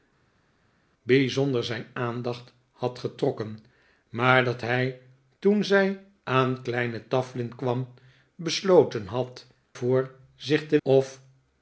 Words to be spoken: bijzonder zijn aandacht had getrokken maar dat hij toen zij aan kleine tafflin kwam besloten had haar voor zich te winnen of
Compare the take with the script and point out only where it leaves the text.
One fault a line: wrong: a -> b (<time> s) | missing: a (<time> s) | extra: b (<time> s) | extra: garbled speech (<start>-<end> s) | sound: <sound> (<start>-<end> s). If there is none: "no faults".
missing: haar (9.5 s)
missing: winnen (10.8 s)